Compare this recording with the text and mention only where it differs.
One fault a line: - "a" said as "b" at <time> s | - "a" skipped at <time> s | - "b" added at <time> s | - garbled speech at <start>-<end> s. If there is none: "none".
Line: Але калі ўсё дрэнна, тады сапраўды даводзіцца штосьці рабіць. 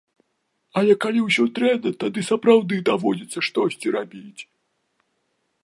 none